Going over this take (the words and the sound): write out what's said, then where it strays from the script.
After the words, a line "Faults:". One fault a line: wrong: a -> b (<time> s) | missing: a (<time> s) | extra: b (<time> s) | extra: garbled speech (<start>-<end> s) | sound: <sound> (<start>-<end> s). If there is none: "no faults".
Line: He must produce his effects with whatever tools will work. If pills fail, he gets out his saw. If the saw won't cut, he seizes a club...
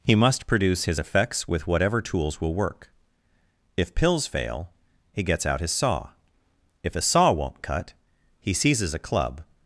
He must produce his effects with whatever tools will work. If pills fail, he gets out his saw. If a saw won't cut, he seizes a club...
Faults:
wrong: the -> a (6.9 s)